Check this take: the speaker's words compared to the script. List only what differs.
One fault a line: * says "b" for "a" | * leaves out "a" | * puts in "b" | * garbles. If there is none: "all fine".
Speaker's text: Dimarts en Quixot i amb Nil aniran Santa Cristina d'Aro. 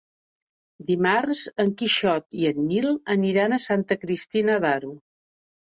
* says "en" for "amb"
* puts in "a"